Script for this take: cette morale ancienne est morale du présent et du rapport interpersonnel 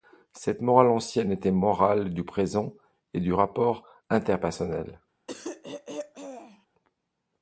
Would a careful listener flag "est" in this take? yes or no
yes